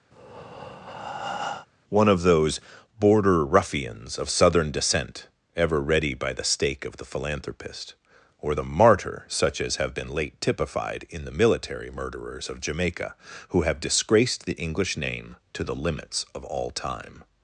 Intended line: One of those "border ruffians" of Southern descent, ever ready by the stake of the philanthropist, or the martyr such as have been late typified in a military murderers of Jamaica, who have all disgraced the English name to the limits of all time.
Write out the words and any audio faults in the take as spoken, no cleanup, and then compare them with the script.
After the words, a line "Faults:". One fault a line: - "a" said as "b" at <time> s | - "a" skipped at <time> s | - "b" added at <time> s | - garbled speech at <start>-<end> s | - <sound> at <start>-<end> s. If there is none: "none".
One of those "border ruffians" of Southern descent, ever ready by the stake of the philanthropist, or the martyr such as have been late typified in the military murderers of Jamaica, who have disgraced the English name to the limits of all time.
Faults:
- breath at 0.1-1.7 s
- "a" said as "the" at 11.2 s
- "all" skipped at 13.8 s